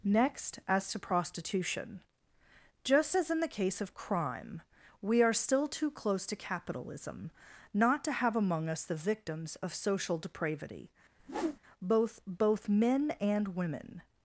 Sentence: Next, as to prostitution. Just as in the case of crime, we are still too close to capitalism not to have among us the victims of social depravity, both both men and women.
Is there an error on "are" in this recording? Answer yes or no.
no